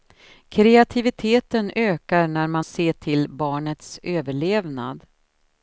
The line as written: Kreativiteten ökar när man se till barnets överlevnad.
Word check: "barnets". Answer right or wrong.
right